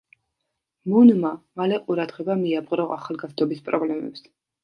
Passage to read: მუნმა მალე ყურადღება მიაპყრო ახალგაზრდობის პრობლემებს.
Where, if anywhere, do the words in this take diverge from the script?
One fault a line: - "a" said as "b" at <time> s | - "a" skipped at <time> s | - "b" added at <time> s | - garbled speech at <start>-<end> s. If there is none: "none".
none